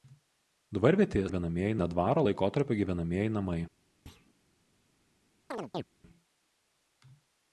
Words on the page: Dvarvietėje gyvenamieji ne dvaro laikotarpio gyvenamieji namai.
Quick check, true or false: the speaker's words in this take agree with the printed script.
true